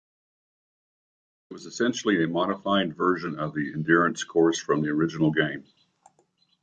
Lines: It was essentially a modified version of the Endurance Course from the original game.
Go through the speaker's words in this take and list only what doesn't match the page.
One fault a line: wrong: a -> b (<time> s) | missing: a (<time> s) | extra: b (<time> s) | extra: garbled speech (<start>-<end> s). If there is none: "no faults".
no faults